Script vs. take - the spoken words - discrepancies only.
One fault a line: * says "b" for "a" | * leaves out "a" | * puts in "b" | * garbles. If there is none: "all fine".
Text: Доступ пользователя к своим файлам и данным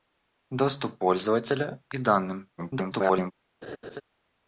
* leaves out "своим файлам"
* garbles